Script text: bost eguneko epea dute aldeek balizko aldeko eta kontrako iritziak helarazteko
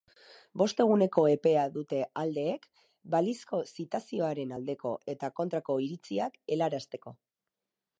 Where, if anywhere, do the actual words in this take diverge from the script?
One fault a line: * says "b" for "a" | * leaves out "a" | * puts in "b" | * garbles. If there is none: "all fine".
* puts in "zitazioaren"